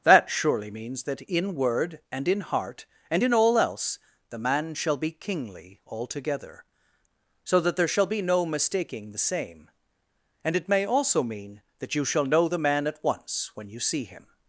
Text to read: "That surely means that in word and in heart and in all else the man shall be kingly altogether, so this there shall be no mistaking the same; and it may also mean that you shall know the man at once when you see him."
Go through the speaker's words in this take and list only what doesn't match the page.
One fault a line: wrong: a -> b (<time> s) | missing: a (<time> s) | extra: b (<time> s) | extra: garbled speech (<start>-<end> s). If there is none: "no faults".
wrong: this -> that (7.6 s)